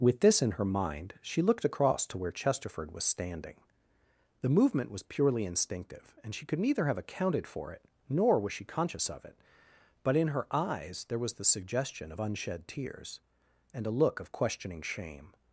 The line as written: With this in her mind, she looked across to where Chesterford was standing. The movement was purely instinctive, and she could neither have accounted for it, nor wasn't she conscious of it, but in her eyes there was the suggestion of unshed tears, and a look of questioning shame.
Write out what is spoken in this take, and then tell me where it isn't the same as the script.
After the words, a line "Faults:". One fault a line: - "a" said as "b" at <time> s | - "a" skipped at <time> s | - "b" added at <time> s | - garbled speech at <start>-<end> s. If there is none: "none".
With this in her mind, she looked across to where Chesterford was standing. The movement was purely instinctive, and she could neither have accounted for it, nor was she conscious of it, but in her eyes there was the suggestion of unshed tears, and a look of questioning shame.
Faults:
- "wasn't" said as "was" at 8.4 s